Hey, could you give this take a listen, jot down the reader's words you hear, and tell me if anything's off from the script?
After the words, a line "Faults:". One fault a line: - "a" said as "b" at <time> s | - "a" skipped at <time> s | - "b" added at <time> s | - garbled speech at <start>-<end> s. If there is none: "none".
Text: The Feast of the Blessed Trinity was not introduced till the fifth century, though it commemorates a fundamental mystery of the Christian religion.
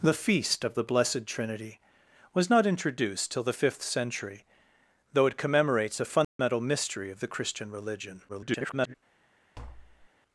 The Feast of the Blessed Trinity was not introduced till the fifth century, though it commemorates a fundamental mystery of the Christian religion. [garbled]
Faults:
- garbled speech at 8.3-8.9 s